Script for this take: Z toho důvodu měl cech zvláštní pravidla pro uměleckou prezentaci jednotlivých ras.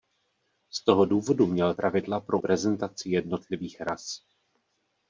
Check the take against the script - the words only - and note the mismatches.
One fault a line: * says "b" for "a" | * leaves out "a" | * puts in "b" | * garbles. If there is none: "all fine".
* leaves out "cech zvláštní"
* leaves out "uměleckou"